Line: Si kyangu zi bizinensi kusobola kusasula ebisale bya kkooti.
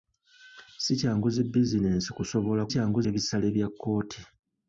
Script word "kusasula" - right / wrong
wrong